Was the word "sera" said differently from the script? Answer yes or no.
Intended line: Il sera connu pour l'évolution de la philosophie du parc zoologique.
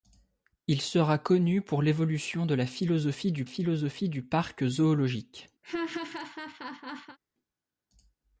no